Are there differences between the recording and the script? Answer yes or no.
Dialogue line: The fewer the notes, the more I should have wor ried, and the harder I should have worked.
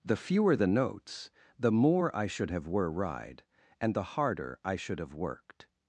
yes